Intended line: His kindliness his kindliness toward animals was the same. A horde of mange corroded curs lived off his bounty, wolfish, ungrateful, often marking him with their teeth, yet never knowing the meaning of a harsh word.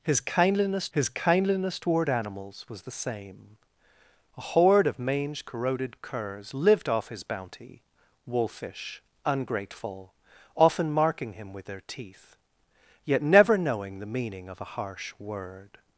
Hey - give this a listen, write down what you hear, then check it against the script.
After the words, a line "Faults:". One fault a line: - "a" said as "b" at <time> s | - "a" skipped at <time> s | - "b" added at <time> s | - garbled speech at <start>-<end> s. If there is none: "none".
His kindliness his kindliness toward animals was the same. A horde of mange corroded curs lived off his bounty, wolfish, ungrateful, often marking him with their teeth, yet never knowing the meaning of a harsh word.
Faults:
none